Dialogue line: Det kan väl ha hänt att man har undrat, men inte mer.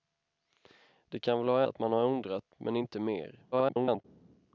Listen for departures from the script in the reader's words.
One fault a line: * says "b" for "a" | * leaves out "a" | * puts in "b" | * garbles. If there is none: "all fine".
* leaves out "hänt"
* garbles